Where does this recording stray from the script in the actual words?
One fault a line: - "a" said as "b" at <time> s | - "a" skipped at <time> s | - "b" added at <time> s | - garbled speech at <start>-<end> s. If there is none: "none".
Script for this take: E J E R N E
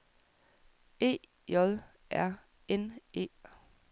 - "E" skipped at 1.8 s